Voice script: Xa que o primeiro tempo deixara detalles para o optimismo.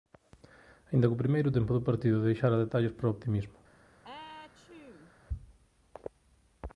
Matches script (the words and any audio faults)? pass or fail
fail